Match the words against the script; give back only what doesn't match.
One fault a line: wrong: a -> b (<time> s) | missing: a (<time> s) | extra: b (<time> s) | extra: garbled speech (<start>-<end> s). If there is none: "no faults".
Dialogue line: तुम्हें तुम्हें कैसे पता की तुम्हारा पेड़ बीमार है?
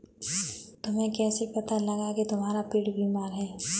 missing: तुम्हें (1.1 s)
extra: लगा (1.8 s)